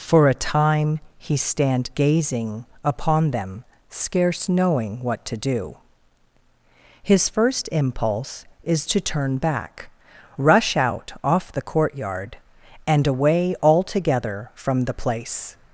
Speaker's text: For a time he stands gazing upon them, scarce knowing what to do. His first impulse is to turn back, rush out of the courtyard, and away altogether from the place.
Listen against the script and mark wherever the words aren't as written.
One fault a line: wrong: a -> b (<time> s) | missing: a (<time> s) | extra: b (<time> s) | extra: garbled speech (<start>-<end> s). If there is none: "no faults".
wrong: stands -> stand (1.4 s)
wrong: of -> off (11.2 s)